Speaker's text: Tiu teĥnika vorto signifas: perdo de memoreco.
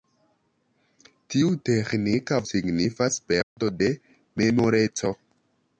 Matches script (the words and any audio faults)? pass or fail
fail